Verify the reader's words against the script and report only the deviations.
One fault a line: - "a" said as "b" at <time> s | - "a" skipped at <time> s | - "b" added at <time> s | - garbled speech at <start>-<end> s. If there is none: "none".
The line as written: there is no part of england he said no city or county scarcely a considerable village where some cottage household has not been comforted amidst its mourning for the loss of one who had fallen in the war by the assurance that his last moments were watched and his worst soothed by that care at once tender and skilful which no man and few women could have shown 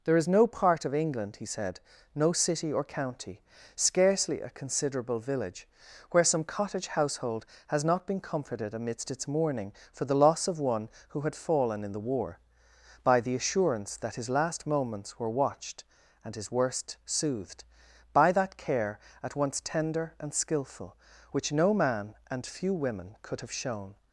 none